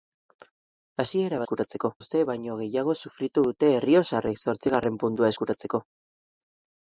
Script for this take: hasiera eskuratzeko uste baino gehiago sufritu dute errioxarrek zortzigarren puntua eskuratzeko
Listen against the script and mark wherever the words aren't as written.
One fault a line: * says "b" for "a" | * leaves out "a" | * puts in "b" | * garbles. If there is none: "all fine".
all fine